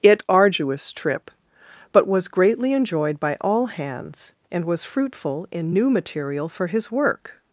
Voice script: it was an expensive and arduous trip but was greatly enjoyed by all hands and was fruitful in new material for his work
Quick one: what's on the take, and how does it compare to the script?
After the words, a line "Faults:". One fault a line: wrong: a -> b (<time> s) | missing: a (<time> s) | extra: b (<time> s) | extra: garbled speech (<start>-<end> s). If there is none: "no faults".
it arduous trip but was greatly enjoyed by all hands and was fruitful in new material for his work
Faults:
missing: was an expensive and (0.2 s)